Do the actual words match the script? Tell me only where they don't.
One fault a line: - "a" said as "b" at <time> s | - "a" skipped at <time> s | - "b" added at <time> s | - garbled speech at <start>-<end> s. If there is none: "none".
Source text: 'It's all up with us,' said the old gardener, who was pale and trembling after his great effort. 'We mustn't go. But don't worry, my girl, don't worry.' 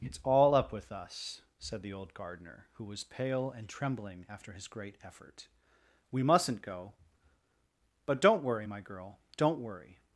none